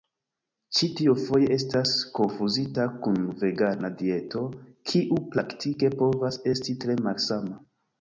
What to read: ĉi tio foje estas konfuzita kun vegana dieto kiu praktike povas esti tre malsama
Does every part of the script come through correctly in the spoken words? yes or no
yes